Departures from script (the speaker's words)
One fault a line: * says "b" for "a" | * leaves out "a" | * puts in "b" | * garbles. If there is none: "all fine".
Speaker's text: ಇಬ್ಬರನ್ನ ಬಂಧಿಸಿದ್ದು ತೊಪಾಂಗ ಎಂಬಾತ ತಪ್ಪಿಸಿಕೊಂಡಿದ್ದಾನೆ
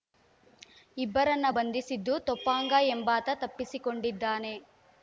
all fine